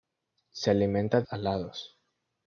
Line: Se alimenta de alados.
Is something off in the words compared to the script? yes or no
no